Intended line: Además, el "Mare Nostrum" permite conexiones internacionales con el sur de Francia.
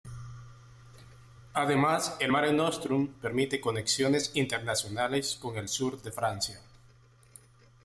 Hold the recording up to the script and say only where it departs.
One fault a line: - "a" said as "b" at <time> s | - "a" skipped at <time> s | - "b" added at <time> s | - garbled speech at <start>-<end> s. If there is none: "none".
none